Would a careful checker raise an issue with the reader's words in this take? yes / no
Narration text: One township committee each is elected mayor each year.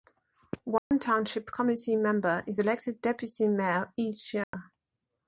yes